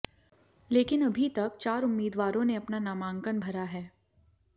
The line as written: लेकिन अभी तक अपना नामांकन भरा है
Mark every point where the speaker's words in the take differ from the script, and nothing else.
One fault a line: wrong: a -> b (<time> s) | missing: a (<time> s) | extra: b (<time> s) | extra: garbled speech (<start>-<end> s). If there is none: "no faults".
extra: चार उम्मीदवारों ने (1.6 s)